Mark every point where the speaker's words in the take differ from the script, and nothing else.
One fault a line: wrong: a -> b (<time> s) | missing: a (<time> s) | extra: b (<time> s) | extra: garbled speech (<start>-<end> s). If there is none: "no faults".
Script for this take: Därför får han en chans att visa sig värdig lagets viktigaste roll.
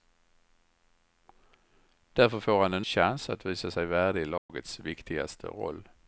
no faults